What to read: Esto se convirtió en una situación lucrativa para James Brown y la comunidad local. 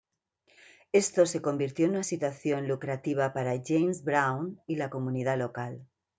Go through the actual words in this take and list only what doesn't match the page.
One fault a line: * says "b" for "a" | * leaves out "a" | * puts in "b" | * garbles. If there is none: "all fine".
all fine